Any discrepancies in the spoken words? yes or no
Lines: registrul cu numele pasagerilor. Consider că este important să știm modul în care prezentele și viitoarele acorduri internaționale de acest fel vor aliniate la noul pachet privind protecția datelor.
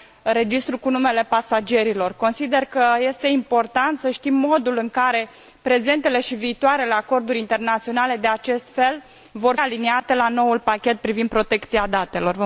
no